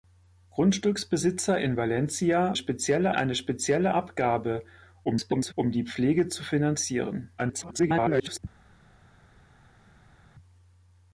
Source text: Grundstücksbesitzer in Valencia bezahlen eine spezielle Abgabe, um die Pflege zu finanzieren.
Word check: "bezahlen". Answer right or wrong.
wrong